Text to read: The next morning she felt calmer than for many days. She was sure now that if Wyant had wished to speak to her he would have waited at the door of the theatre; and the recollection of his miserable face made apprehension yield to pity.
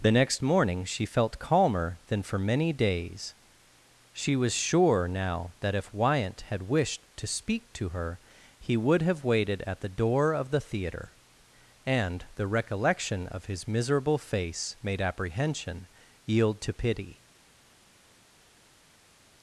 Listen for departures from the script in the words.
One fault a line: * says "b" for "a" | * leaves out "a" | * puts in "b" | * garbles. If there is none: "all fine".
all fine